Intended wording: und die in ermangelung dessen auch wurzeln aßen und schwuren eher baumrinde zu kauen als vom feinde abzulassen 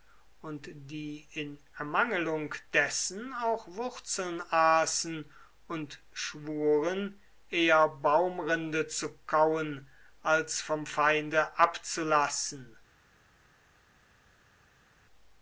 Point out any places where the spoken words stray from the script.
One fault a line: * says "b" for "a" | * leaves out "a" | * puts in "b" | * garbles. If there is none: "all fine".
all fine